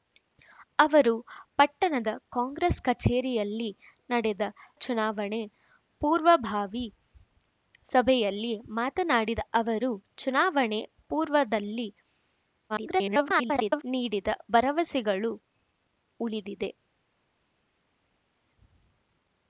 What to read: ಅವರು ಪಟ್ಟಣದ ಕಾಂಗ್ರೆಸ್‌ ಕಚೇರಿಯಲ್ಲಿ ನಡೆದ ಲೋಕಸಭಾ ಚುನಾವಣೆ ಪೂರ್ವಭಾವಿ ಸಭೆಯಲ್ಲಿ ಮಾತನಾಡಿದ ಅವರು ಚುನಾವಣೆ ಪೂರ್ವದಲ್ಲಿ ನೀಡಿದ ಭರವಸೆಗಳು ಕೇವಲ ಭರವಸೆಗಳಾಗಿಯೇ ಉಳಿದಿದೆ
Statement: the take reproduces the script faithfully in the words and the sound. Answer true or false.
false